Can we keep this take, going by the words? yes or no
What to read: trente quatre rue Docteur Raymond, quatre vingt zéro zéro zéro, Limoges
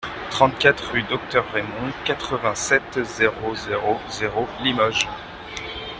no